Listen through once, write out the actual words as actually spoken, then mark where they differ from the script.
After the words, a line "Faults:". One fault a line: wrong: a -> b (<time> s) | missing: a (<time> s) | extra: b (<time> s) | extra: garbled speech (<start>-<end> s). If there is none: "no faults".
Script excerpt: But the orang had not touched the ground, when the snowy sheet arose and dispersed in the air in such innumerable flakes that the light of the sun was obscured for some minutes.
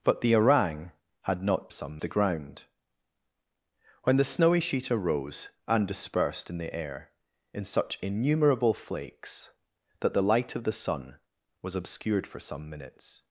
But the orang had not some the ground, when the snowy sheet arose and dispersed in the air in such innumerable flakes that the light of the sun was obscured for some minutes.
Faults:
wrong: touched -> some (1.7 s)